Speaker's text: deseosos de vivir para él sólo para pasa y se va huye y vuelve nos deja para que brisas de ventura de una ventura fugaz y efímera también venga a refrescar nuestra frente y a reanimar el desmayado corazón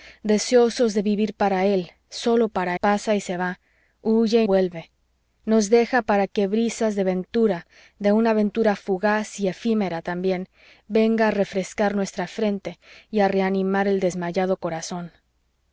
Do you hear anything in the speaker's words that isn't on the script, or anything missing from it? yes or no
no